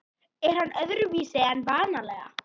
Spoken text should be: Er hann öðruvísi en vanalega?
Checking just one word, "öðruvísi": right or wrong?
right